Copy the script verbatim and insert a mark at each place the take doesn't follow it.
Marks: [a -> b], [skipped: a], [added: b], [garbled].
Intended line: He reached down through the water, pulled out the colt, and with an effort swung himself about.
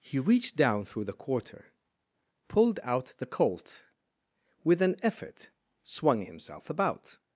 He reached down through the [water, -> quarter] pulled out the colt, [skipped: and] with an effort swung himself about.